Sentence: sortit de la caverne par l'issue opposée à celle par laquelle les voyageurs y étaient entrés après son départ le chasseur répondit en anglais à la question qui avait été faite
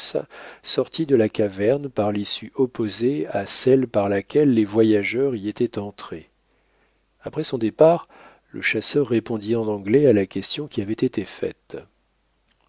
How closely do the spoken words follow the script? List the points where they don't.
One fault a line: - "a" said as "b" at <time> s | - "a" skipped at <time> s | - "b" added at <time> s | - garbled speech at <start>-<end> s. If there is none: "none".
none